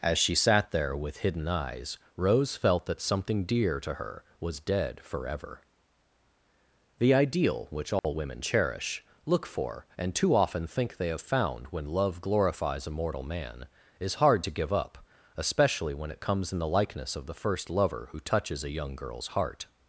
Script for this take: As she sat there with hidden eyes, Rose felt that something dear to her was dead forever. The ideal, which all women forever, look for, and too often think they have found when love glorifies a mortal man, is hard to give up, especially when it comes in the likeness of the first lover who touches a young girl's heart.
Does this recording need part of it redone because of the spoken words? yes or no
yes